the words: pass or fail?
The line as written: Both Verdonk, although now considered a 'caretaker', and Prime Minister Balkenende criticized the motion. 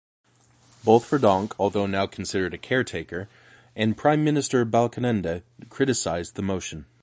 pass